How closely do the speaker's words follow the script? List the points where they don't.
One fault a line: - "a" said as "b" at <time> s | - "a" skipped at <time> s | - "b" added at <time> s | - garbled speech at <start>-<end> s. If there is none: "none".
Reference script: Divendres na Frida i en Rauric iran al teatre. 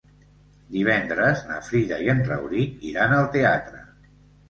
none